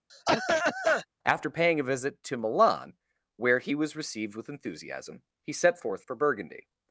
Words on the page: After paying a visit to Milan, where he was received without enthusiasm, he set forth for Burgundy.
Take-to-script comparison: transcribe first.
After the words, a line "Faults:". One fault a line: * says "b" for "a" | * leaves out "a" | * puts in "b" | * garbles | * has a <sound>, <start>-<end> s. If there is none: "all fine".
After paying a visit to Milan, where he was received with enthusiasm, he set forth for Burgundy.
Faults:
* has a cough, 0.1-1.1 s
* says "with" for "without"